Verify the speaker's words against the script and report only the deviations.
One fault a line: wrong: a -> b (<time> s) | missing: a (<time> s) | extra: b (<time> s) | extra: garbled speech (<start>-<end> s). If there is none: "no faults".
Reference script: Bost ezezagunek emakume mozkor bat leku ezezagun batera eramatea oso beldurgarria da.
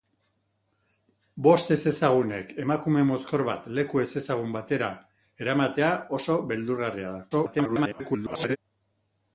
extra: garbled speech (7.3-8.6 s)